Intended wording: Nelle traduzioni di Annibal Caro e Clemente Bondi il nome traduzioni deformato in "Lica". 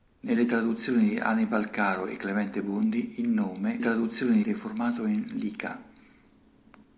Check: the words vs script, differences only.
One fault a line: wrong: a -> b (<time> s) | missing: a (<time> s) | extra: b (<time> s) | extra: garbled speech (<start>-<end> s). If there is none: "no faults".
no faults